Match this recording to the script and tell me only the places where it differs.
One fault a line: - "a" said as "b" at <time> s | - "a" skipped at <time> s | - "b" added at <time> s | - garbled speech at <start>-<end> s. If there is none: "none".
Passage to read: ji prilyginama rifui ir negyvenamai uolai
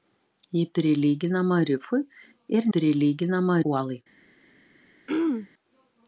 - "negyvenamai" said as "prilyginama" at 2.7 s